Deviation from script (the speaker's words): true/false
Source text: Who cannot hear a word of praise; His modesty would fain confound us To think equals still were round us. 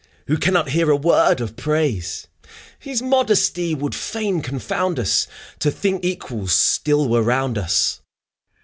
false